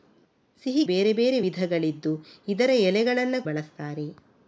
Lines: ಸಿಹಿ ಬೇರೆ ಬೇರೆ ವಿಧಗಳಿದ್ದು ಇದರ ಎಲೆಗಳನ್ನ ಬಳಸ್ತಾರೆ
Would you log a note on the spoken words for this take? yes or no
no